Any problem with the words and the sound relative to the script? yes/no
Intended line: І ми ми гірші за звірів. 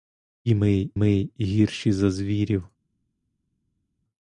no